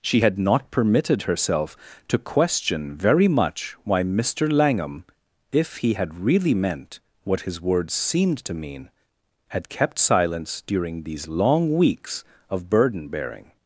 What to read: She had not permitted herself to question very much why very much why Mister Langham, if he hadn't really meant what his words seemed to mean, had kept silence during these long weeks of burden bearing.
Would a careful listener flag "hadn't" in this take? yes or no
yes